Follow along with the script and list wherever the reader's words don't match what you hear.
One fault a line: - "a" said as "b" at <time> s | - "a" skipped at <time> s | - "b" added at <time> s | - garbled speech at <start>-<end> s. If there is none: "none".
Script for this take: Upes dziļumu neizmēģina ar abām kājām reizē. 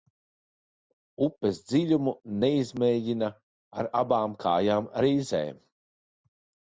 none